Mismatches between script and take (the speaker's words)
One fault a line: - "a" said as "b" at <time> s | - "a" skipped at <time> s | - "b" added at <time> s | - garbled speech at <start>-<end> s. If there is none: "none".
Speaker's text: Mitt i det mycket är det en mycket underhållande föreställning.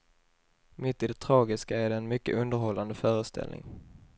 - "mycket" said as "tragiska" at 1.2 s